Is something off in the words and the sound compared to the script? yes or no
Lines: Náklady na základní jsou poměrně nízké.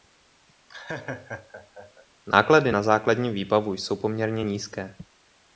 yes